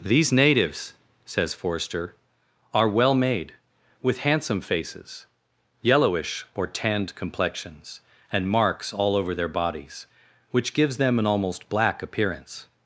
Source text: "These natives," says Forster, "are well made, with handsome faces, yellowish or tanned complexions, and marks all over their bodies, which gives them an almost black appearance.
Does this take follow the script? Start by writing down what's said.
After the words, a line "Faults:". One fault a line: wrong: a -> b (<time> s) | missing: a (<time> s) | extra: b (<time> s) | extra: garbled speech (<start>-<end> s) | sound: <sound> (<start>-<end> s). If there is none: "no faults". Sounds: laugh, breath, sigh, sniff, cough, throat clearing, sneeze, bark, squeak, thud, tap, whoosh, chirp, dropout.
"These natives," says Forster, "are well made, with handsome faces, yellowish or tanned complexions, and marks all over their bodies, which gives them an almost black appearance.
Faults:
no faults